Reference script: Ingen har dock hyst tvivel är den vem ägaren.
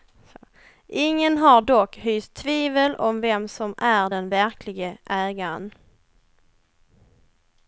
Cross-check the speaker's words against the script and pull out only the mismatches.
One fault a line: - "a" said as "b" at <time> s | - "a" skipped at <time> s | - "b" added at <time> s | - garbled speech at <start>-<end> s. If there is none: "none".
- "om vem som" added at 2.9 s
- "vem" said as "verklige" at 4.3 s